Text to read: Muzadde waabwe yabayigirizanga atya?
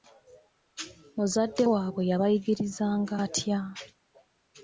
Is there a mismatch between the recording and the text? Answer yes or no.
no